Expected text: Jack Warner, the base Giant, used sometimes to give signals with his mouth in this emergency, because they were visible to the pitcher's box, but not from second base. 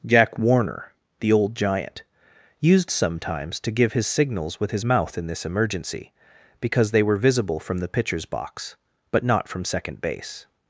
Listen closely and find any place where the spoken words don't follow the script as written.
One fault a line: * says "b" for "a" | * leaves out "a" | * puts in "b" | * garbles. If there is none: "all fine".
* says "old" for "base"
* puts in "his"
* says "from" for "to"